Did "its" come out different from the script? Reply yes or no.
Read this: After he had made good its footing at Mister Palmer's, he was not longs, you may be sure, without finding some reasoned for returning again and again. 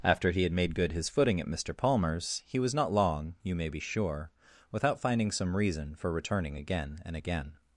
yes